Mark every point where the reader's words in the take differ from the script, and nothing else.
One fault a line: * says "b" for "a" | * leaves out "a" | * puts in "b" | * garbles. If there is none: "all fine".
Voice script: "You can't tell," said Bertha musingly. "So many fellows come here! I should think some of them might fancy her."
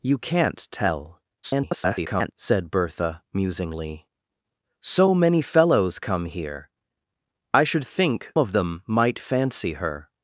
* garbles
* leaves out "some"